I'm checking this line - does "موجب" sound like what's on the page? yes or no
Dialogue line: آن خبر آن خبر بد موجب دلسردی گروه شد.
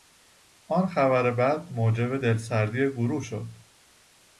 yes